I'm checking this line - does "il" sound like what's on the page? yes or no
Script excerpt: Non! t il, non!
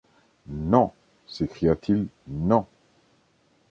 yes